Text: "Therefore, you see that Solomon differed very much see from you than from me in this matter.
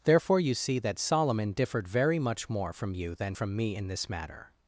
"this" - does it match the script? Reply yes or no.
yes